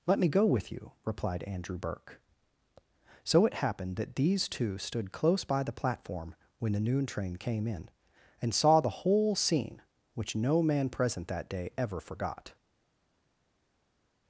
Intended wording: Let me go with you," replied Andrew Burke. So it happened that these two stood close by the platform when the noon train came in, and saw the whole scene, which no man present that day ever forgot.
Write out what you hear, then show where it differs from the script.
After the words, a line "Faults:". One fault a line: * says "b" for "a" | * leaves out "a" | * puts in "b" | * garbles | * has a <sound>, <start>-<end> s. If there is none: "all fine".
Let me go with you," replied Andrew Burke. So it happened that these two stood close by the platform when the noon train came in, and saw the whole scene, which no man present that day ever forgot.
Faults:
all fine